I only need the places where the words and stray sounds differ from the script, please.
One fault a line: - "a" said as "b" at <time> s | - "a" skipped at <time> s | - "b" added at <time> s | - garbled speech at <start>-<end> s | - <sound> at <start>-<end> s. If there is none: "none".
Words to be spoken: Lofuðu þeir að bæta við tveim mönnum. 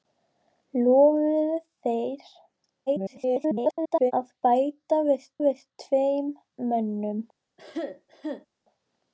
- garbled speech at 2.9-4.1 s
- "við" added at 5.5 s
- cough at 7.6-8.5 s